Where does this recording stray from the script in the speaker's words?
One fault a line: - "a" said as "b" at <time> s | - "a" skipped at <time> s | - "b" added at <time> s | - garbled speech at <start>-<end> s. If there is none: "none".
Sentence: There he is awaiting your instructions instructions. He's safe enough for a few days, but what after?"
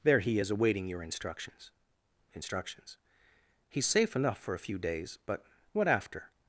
none